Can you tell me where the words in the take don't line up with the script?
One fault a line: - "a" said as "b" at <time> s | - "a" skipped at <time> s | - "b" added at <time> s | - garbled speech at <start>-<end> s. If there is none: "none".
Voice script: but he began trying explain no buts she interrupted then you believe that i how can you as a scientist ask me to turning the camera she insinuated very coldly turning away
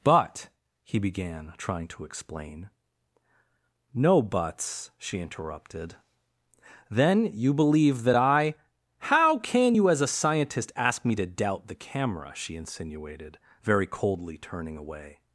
- "to" added at 1.9 s
- "turning" said as "doubt" at 11.3 s